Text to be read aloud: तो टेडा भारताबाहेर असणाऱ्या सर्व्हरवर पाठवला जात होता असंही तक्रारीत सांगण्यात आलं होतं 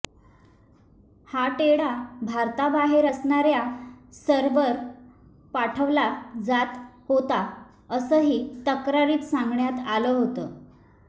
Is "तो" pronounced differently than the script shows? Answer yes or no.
yes